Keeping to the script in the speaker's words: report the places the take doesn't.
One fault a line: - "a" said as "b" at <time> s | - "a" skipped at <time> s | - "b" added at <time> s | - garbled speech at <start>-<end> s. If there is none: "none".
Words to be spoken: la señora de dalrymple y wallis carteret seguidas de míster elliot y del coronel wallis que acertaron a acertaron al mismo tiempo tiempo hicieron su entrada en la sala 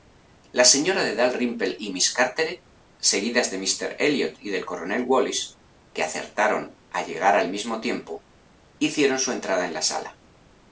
- "wallis" said as "miss" at 1.9 s
- "acertaron" said as "llegar" at 7.1 s
- "tiempo" skipped at 8.2 s